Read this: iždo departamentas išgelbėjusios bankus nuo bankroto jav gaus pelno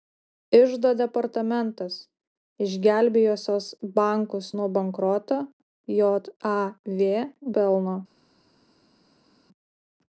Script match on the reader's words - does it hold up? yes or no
no